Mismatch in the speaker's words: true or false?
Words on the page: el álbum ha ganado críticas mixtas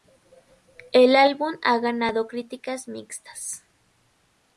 false